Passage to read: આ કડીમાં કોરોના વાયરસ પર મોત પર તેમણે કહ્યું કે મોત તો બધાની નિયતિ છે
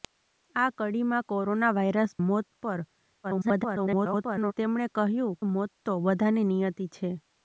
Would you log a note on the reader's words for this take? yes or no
yes